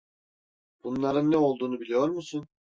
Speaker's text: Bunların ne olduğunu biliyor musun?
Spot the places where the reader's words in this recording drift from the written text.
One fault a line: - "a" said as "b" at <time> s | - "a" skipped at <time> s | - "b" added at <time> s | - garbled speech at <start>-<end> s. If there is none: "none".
none